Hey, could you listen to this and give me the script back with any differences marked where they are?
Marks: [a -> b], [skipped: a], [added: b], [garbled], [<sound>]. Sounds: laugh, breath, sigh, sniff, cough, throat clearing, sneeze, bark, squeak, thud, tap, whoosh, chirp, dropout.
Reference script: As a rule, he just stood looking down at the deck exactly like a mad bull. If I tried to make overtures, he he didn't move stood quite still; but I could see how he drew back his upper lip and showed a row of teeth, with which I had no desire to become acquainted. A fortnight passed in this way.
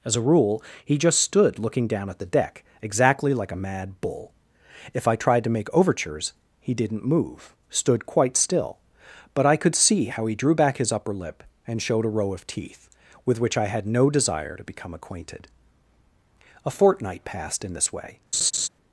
As a rule, he just stood looking down at the deck exactly like a mad bull. If I tried to make overtures, he [skipped: he] didn't move stood quite still; but I could see how he drew back his upper lip and showed a row of teeth, with which I had no desire to become acquainted. A fortnight passed in this way. [laugh]